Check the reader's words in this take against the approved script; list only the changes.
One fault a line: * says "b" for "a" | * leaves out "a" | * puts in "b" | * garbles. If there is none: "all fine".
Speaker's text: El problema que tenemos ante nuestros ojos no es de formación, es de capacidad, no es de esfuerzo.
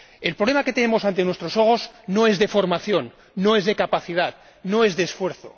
* puts in "no"